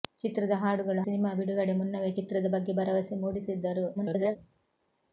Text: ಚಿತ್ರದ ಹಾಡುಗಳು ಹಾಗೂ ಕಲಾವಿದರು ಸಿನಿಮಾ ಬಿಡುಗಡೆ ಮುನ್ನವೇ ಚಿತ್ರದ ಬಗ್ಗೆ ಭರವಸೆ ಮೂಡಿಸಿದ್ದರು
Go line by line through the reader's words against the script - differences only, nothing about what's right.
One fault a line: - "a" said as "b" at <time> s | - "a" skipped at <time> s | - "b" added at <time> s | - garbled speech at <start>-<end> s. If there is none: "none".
- "ಹಾಗೂ ಕಲಾವಿದರು" skipped at 1.0 s
- garbled speech at 4.0-4.4 s